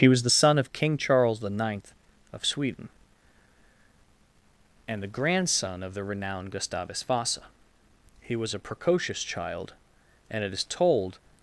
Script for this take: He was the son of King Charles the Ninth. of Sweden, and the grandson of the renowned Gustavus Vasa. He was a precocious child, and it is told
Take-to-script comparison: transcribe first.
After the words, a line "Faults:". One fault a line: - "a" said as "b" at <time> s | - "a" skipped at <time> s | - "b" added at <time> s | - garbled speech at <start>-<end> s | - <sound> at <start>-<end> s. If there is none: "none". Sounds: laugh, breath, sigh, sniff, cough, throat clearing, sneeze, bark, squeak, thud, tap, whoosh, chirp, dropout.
He was the son of King Charles the Ninth. of Sweden, and the grandson of the renowned Gustavus Vasa. He was a precocious child, and it is told
Faults:
none